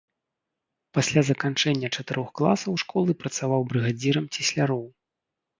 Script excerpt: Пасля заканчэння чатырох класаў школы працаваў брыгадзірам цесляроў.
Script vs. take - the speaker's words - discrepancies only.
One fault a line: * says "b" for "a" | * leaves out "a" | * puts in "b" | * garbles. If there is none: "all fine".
all fine